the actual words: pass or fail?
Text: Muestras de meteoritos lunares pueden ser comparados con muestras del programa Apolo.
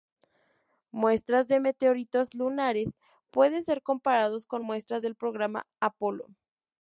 pass